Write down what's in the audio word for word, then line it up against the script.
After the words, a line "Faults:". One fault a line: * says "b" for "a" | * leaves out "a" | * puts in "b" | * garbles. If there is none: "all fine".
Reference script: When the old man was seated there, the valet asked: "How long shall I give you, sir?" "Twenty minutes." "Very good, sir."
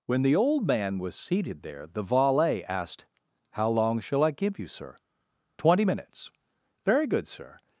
When the old man was seated there, the valet asked: "How long shall I give you, sir?" "Twenty minutes." "Very good, sir."
Faults:
all fine